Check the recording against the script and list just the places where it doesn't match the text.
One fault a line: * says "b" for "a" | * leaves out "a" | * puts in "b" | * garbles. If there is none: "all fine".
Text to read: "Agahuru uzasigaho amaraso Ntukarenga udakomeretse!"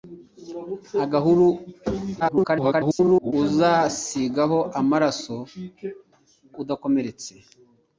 * garbles
* leaves out "Ntukarenga"